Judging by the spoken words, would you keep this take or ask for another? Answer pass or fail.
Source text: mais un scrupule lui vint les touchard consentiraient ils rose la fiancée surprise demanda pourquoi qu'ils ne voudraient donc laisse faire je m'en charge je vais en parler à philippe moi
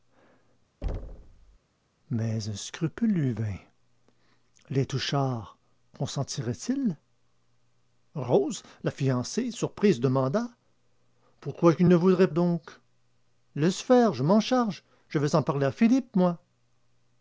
pass